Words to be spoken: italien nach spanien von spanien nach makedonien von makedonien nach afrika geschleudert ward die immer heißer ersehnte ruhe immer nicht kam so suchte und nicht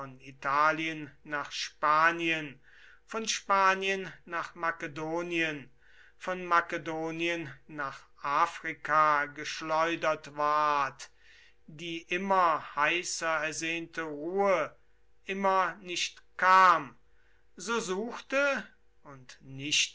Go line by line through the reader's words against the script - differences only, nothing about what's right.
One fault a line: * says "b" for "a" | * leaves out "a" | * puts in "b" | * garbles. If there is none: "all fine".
all fine